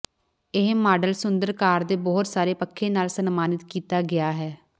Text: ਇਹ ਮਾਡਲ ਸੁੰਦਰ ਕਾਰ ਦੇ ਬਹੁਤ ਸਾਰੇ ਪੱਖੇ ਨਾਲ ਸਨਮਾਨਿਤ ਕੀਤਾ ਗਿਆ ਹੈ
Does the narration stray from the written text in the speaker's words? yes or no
no